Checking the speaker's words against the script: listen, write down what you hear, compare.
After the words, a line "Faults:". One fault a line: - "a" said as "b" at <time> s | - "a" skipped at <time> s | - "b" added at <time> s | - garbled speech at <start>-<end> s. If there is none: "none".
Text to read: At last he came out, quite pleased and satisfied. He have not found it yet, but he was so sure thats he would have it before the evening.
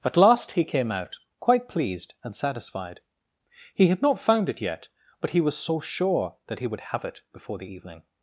At last he came out, quite pleased and satisfied. He had not found it yet, but he was so sure that he would have it before the evening.
Faults:
- "have" said as "had" at 3.9 s
- "thats" said as "that" at 6.5 s